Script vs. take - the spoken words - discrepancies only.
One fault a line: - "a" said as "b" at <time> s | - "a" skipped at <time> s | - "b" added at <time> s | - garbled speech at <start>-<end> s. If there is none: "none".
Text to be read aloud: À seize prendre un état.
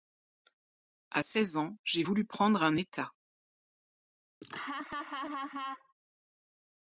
- "ans j'ai voulu" added at 1.6 s